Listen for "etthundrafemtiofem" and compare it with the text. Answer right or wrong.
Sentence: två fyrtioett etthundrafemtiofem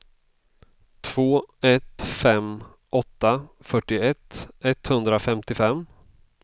right